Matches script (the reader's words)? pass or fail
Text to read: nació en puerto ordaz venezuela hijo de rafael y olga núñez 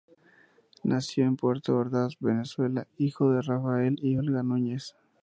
pass